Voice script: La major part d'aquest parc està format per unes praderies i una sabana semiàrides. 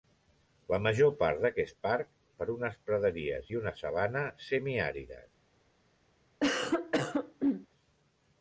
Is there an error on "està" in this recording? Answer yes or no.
yes